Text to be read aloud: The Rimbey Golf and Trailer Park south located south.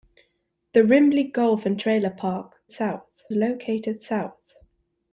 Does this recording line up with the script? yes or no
yes